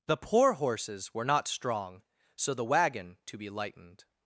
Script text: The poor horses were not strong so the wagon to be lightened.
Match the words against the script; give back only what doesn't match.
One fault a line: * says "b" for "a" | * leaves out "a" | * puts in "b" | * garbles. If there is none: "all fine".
all fine